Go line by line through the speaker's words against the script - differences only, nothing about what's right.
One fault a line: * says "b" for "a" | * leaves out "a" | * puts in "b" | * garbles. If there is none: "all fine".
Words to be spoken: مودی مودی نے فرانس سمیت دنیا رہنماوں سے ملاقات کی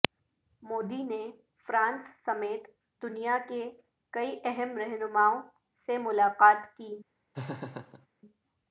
* leaves out "مودی"
* puts in "کے کئی اہم"